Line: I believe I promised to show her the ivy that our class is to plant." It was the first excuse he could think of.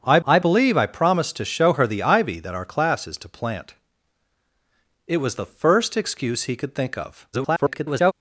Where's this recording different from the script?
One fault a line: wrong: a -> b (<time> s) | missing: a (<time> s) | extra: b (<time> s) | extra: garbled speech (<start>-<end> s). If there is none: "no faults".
extra: I (0.2 s)
extra: garbled speech (7.3-8.1 s)